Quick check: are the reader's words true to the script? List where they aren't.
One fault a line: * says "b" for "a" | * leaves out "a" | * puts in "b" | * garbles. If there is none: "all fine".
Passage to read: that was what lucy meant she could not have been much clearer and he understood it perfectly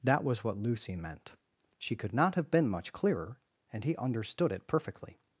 all fine